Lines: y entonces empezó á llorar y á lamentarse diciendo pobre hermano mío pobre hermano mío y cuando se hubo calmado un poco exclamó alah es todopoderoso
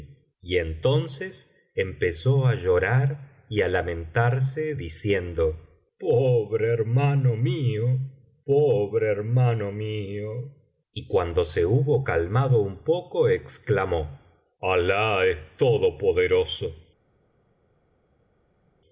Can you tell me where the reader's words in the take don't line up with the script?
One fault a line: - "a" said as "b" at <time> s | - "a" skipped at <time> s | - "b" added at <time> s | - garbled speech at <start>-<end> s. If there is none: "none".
none